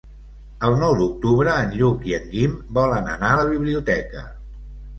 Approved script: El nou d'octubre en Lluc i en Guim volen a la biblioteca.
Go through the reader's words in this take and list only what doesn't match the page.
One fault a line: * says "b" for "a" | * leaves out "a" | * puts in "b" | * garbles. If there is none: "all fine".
* puts in "anar"